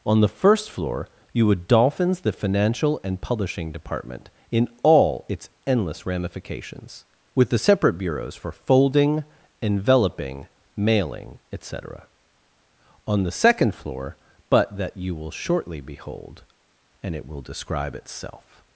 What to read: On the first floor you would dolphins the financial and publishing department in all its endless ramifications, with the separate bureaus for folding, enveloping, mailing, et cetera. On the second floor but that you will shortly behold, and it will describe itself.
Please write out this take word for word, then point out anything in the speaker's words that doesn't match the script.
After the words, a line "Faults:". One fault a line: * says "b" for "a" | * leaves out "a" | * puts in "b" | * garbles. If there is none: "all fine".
On the first floor you would dolphins the financial and publishing department in all its endless ramifications, with the separate bureaus for folding, enveloping, mailing, et cetera. On the second floor but that you will shortly behold, and it will describe itself.
Faults:
all fine